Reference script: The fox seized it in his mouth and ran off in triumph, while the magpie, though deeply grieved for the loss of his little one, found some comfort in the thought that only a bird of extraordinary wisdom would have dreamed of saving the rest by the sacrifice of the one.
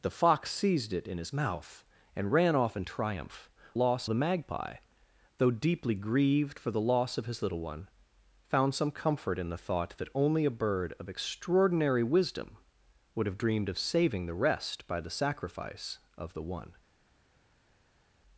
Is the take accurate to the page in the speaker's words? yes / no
no